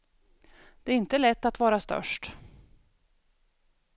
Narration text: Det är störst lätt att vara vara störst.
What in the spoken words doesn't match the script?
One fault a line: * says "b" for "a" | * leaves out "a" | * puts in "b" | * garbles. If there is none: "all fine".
* says "inte" for "störst"
* leaves out "vara"